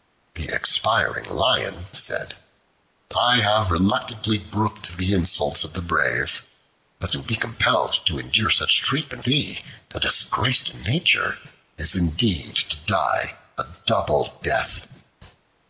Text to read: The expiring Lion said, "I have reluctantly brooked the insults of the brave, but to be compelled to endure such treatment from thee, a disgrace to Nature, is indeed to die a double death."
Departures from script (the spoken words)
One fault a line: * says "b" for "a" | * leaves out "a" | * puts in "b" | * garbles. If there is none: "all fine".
* leaves out "from"